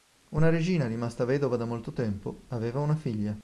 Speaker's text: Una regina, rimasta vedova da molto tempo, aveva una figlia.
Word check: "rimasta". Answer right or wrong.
right